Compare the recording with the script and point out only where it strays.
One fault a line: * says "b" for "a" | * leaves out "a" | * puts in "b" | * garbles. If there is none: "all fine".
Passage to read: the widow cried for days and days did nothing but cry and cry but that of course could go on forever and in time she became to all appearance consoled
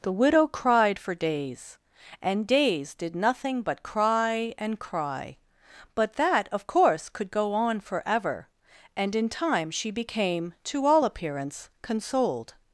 all fine